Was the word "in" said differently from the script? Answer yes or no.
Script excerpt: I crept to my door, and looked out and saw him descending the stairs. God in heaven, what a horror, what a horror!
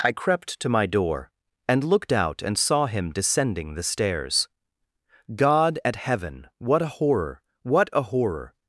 yes